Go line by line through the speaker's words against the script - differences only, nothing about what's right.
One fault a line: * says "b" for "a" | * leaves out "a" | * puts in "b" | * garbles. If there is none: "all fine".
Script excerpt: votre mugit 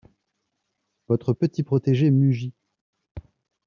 * puts in "petit protégé"